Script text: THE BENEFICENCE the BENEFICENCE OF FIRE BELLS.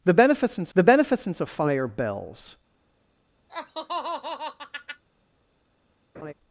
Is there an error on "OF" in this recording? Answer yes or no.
no